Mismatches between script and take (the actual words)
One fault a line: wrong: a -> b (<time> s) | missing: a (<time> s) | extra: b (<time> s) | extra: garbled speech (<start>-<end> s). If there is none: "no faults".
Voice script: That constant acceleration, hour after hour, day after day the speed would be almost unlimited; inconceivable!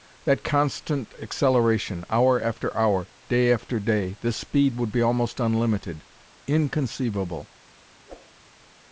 no faults